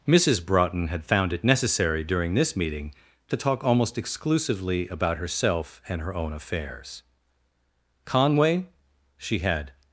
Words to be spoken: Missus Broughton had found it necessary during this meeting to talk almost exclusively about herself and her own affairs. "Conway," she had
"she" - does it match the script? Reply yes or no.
yes